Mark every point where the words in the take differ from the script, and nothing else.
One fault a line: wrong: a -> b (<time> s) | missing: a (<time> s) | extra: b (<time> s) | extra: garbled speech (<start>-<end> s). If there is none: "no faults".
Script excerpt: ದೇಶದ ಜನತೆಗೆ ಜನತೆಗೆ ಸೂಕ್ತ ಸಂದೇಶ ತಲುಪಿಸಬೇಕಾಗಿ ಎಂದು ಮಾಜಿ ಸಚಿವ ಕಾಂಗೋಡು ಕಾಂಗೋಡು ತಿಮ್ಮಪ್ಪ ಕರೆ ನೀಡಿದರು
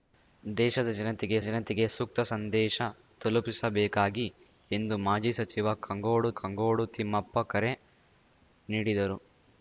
no faults